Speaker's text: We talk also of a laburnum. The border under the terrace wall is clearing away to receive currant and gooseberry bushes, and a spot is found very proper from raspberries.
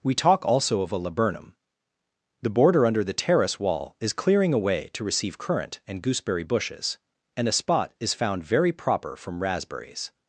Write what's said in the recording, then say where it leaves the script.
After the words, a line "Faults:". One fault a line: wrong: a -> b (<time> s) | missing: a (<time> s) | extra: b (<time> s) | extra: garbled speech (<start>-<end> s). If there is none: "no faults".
We talk also of a laburnum. The border under the terrace wall is clearing away to receive currant and gooseberry bushes, and a spot is found very proper from raspberries.
Faults:
no faults